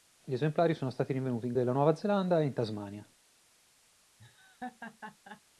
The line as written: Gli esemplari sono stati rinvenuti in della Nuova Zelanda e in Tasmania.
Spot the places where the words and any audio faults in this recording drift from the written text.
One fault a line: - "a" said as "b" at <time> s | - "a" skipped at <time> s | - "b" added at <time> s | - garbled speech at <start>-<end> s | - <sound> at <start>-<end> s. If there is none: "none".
- laugh at 4.2-5.4 s